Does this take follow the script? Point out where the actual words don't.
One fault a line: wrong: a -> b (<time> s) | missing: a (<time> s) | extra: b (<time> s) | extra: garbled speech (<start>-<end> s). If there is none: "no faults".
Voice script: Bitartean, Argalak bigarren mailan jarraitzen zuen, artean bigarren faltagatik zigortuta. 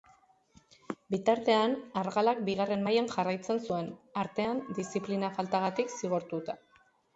wrong: bigarren -> diziplina (4.8 s)